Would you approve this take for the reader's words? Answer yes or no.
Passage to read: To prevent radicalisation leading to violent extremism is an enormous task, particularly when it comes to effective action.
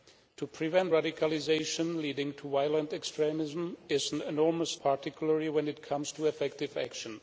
no